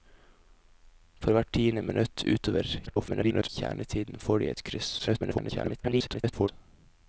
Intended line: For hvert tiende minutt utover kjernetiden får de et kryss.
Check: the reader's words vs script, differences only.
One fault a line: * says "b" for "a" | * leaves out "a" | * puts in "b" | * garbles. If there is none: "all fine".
* garbles
* garbles